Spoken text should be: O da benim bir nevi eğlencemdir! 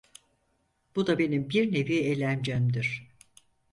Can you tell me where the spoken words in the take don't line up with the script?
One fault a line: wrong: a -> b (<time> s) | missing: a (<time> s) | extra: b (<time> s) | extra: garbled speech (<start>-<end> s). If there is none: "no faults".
wrong: O -> Bu (0.9 s)